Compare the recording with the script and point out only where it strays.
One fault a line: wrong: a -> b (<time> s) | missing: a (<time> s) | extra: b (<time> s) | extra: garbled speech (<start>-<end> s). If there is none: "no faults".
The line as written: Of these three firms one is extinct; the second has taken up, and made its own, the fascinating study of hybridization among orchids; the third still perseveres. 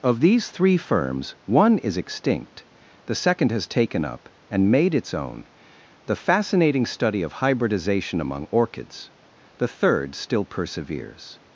no faults